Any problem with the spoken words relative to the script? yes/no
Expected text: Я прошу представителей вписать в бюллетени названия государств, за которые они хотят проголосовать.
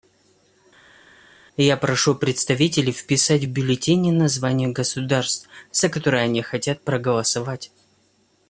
no